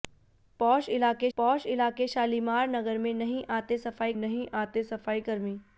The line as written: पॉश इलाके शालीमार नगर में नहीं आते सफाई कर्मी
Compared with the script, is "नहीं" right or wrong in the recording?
right